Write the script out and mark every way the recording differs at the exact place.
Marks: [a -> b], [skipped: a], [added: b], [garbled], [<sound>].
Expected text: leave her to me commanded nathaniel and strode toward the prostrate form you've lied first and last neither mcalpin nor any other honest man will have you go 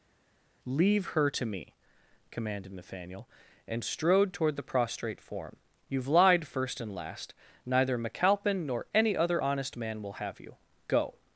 leave her to me commanded nathaniel and strode toward the prostrate form you've lied first and last neither mcalpin nor any other honest man will have you go